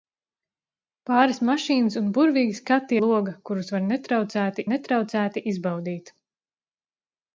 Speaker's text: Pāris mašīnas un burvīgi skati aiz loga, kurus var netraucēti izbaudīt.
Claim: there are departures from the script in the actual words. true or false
true